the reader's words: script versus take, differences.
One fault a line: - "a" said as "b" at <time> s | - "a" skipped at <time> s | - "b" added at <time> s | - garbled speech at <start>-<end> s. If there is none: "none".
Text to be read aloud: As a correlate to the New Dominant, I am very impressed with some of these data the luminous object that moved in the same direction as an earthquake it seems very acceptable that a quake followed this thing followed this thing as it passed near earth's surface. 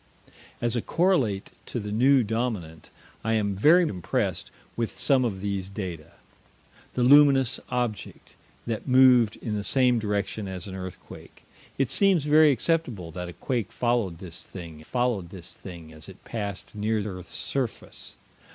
none